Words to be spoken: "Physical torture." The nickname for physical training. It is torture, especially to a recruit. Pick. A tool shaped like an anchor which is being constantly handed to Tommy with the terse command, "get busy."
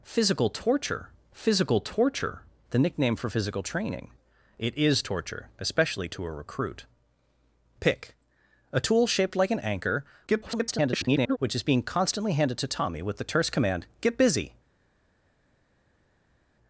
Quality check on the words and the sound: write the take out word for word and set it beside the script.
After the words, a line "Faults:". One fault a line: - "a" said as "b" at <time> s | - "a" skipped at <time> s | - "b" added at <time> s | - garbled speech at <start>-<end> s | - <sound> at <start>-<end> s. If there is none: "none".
"Physical torture physical torture." The nickname for physical training. It is torture, especially to a recruit. Pick. A tool shaped like an anchor [garbled] which is being constantly handed to Tommy with the terse command, "get busy."
Faults:
- "physical torture" added at 1.3 s
- garbled speech at 10.3-11.4 s